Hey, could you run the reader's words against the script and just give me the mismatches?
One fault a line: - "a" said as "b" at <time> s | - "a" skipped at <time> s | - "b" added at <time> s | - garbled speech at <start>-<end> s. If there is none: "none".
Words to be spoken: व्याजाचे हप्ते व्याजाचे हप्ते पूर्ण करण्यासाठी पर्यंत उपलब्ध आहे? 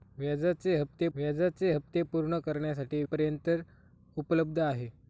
none